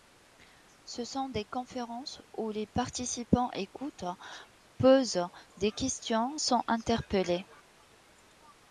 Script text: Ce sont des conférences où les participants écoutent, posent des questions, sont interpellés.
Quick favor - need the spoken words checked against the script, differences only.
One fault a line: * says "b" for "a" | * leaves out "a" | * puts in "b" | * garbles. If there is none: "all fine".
all fine